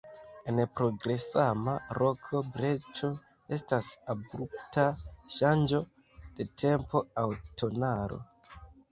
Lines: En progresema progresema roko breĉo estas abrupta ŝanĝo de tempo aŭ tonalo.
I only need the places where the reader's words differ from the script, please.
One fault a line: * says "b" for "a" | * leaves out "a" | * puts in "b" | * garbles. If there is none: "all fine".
* leaves out "progresema"